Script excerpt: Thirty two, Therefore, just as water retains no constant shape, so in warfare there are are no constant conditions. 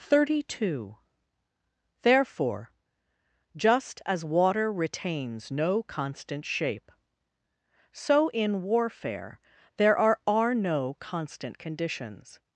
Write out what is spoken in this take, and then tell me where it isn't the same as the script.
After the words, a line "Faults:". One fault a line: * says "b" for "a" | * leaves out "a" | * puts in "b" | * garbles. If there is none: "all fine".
Thirty two, Therefore, just as water retains no constant shape, so in warfare there are are no constant conditions.
Faults:
all fine